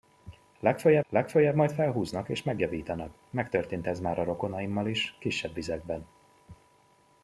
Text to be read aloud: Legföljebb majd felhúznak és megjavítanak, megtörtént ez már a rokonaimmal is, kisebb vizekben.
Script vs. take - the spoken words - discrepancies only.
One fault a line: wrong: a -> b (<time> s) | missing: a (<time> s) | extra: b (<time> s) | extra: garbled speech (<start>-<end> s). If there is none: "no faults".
extra: legföljebb (1.1 s)